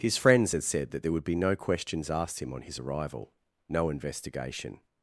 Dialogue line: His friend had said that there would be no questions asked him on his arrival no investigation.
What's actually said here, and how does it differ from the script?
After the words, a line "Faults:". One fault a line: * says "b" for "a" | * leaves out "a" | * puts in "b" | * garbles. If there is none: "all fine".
His friends had said that there would be no questions asked him on his arrival no investigation.
Faults:
* says "friends" for "friend"